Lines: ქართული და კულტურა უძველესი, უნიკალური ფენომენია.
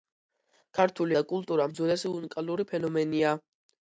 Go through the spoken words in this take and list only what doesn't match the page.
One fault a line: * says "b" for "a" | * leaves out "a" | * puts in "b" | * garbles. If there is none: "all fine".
all fine